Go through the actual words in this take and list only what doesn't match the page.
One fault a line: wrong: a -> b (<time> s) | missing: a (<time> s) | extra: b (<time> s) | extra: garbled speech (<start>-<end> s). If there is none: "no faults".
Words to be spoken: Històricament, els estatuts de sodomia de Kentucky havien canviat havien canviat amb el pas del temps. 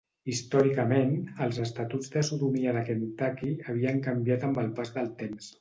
missing: havien canviat (4.5 s)